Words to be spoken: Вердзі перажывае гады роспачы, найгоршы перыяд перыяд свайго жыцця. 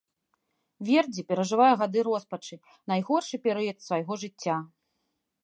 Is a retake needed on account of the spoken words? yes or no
yes